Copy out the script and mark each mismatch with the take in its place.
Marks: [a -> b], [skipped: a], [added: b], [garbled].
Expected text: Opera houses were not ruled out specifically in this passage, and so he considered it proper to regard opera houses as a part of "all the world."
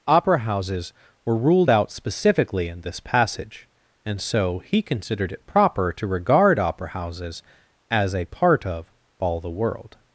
Opera houses were [skipped: not] ruled out specifically in this passage, and so he considered it proper to regard opera houses as a part of "all the world."